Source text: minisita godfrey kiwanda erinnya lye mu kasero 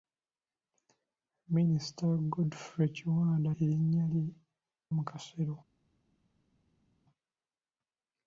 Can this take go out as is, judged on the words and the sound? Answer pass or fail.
pass